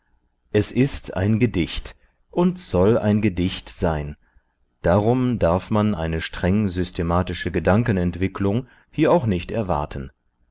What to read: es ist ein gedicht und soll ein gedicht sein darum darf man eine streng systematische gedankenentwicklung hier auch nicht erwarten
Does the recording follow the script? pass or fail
pass